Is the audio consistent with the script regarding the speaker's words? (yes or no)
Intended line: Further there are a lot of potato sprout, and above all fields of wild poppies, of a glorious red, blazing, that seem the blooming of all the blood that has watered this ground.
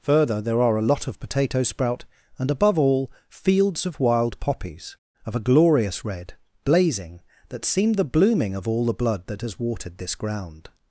yes